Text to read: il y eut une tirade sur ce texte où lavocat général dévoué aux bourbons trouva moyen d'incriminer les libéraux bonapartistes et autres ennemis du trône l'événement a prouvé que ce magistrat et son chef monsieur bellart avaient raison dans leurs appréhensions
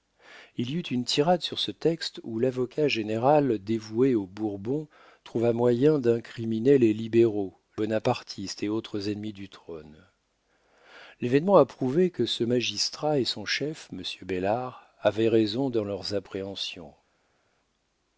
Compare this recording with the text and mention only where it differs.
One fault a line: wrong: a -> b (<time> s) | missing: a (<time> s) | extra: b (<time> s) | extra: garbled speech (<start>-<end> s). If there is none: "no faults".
no faults